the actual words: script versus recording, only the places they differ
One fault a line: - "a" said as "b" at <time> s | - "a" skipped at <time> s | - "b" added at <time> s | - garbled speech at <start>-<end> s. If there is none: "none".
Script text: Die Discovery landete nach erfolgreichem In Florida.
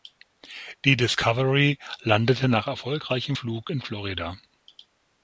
- "Flug" added at 3.3 s